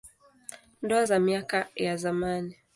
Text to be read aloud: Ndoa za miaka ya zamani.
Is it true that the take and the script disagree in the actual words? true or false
false